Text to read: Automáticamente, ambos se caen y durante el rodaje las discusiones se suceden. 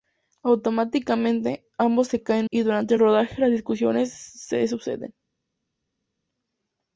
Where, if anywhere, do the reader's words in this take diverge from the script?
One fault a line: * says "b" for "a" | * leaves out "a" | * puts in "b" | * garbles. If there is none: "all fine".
all fine